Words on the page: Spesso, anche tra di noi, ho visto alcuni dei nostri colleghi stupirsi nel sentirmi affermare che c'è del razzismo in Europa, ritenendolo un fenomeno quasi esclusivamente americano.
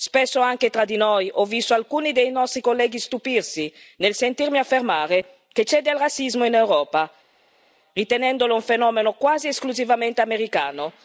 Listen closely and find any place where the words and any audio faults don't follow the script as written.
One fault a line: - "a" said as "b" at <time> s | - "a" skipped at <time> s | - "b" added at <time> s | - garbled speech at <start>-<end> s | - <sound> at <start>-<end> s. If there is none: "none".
none